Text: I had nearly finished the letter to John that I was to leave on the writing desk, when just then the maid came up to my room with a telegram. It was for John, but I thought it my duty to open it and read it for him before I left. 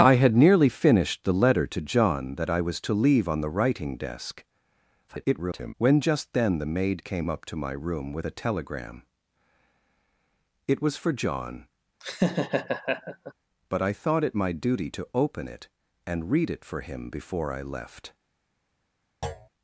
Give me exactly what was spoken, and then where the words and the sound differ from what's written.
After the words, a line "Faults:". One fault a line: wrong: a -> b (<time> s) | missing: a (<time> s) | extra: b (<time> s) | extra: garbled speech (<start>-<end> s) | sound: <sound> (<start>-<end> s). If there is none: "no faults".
I had nearly finished the letter to John that I was to leave on the writing desk, [garbled] when just then the maid came up to my room with a telegram. It was for John, but I thought it my duty to open it and read it for him before I left.
Faults:
extra: garbled speech (5.1-5.7 s)
sound: laugh (12.0-13.3 s)
sound: thud (19.2-19.5 s)